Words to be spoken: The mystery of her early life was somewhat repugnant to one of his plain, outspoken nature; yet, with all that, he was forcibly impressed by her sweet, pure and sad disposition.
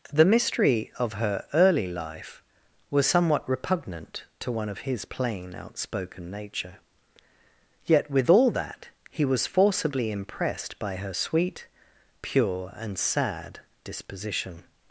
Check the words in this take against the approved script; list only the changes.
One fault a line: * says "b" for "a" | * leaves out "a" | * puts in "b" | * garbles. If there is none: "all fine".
all fine